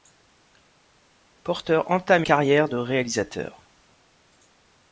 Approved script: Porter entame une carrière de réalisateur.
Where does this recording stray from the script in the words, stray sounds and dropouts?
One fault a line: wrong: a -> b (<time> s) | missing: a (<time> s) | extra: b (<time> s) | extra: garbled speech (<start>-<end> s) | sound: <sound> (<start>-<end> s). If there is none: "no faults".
missing: une (2.2 s)